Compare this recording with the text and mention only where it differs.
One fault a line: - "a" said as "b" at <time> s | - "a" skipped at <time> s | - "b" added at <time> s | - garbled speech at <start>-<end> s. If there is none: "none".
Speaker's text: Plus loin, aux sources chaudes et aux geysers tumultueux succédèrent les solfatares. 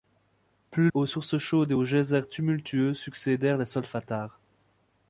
- "loin" skipped at 0.9 s